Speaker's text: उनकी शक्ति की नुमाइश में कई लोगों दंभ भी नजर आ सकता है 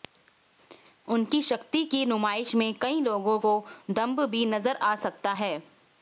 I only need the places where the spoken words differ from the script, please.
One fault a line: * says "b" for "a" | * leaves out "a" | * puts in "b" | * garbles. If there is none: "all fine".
* puts in "को"